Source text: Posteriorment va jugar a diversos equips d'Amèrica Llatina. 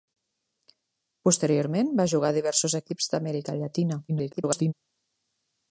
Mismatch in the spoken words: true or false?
true